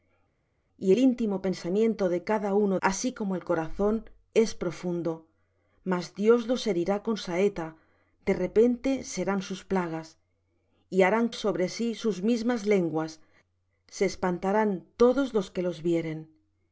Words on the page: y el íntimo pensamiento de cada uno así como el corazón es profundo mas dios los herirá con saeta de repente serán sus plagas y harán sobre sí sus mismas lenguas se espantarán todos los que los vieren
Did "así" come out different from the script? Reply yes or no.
no